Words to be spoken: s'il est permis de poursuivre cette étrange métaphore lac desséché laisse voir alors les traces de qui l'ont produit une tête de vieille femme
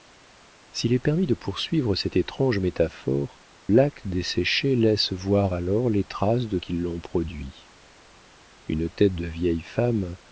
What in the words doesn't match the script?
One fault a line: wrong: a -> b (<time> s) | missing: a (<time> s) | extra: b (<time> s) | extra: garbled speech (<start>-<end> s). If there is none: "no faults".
no faults